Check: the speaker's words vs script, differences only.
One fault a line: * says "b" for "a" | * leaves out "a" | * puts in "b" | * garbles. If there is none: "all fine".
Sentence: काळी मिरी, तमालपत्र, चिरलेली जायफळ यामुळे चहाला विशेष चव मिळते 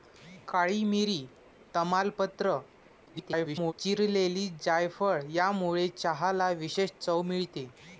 * garbles